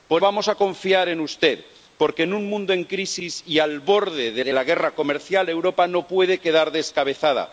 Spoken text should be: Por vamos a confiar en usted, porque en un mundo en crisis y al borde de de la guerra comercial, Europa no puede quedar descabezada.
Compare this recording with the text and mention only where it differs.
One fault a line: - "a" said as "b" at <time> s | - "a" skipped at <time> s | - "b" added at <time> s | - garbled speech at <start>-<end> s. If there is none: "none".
none